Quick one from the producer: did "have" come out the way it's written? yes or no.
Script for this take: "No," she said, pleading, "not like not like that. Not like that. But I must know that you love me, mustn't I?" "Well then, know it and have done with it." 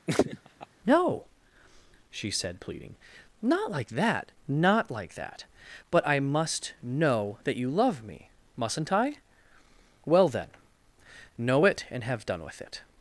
yes